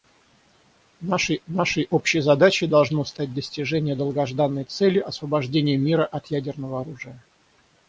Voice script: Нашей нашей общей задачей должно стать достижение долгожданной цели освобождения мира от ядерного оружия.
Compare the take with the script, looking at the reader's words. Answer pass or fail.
pass